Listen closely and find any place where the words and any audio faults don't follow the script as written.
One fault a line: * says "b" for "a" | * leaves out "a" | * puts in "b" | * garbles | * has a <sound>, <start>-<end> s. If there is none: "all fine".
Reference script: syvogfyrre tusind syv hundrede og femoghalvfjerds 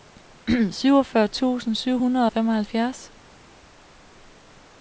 all fine